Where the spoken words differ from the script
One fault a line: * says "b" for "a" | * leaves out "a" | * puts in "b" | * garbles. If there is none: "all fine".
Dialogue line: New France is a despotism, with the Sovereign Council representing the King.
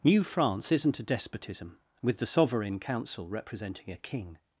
* says "isn't" for "is"
* says "a" for "the"